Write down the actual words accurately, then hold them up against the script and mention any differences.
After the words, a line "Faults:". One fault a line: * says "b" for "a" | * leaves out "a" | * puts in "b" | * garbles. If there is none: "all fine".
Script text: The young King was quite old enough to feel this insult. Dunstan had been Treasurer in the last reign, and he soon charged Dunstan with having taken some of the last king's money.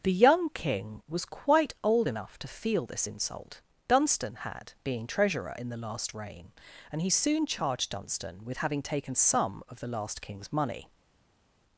The young King was quite old enough to feel this insult. Dunstan had being Treasurer in the last reign, and he soon charged Dunstan with having taken some of the last king's money.
Faults:
* says "being" for "been"